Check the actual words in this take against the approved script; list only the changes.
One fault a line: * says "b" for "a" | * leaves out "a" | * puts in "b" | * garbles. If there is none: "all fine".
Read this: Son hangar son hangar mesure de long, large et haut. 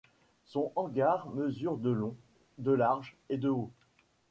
* leaves out "son hangar"
* puts in "de"
* puts in "de"